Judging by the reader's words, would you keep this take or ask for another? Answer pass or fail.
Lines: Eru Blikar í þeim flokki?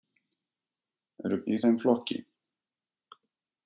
fail